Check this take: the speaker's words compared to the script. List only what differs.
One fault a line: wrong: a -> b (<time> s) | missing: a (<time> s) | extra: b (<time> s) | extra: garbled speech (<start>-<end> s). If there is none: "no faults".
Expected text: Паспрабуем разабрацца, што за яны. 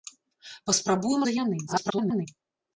missing: разабрацца што (1.3 s)
extra: garbled speech (1.7-2.3 s)